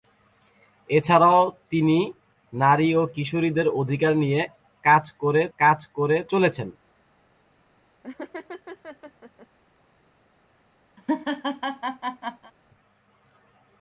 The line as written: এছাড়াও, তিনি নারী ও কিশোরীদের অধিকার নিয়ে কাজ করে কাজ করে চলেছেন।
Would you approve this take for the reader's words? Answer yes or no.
yes